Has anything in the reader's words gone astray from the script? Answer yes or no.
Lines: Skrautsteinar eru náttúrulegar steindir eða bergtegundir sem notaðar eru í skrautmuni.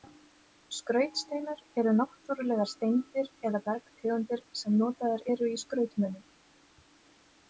no